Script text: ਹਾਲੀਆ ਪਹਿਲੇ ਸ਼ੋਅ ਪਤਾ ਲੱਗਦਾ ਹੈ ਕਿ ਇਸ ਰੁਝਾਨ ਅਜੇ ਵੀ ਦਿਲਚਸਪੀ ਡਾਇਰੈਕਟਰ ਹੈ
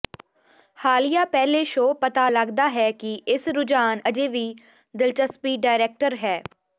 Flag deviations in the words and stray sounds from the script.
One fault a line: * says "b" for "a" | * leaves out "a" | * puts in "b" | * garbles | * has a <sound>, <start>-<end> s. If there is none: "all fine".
all fine